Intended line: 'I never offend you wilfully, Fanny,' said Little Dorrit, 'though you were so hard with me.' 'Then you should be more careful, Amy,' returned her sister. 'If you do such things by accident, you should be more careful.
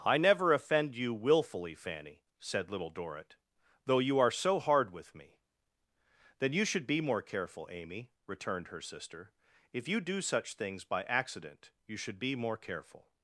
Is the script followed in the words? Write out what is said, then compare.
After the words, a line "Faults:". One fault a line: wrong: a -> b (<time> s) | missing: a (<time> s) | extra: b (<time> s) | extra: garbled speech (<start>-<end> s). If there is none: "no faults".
'I never offend you wilfully, Fanny,' said Little Dorrit, 'though you are so hard with me.' 'Then you should be more careful, Amy,' returned her sister. 'If you do such things by accident, you should be more careful.
Faults:
wrong: were -> are (4.2 s)